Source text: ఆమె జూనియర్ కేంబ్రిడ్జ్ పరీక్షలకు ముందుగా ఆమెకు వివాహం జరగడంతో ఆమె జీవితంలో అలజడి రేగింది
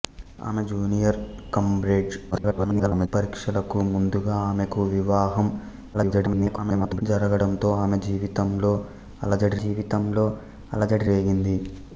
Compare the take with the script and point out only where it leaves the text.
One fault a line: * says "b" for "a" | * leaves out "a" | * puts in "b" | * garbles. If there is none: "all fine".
* garbles
* garbles
* puts in "జీవితంలో అలజడి"